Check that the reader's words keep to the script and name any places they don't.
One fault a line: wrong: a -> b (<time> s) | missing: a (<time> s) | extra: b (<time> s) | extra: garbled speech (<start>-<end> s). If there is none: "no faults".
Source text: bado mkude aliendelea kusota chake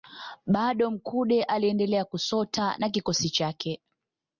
extra: na kikosi (2.8 s)